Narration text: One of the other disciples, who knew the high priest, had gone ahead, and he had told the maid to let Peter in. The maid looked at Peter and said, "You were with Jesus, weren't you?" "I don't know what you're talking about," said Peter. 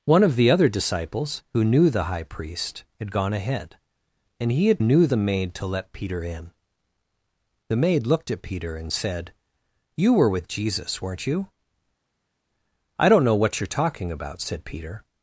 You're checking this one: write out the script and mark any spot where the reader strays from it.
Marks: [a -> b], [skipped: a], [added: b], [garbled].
One of the other disciples, who knew the high priest, had gone ahead, and he had [told -> knew] the maid to let Peter in. The maid looked at Peter and said, "You were with Jesus, weren't you?" "I don't know what you're talking about," said Peter.